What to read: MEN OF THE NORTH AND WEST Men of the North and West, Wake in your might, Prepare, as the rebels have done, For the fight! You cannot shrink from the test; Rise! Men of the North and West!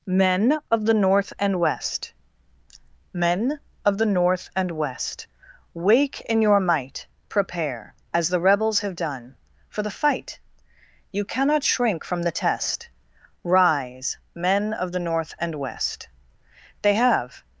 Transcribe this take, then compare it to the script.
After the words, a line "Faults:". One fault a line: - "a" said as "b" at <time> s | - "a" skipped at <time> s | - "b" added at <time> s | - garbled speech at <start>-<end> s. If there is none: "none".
MEN OF THE NORTH AND WEST Men of the North and West, Wake in your might, Prepare, as the rebels have done, For the fight! You cannot shrink from the test; Rise! Men of the North and West! They have
Faults:
- "They have" added at 16.8 s